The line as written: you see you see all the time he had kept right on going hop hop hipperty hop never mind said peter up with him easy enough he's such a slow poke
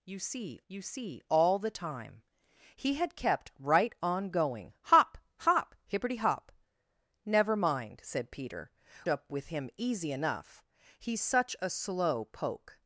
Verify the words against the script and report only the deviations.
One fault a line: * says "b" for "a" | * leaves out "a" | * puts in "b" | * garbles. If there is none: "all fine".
all fine